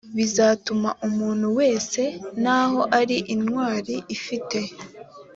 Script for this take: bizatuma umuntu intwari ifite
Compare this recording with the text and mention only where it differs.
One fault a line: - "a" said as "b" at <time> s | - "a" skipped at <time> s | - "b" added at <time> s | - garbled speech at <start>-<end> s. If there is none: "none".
- "wese naho ari" added at 1.6 s